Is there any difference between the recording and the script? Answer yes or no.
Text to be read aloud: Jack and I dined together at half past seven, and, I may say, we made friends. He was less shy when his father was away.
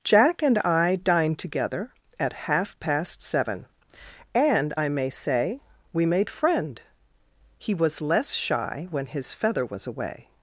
yes